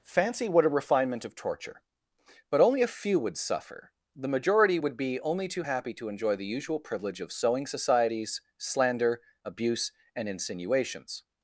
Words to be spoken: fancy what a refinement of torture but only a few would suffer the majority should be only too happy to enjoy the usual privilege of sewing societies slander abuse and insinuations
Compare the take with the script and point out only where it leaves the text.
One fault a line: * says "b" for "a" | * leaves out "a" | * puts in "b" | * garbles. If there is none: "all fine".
* says "would" for "should"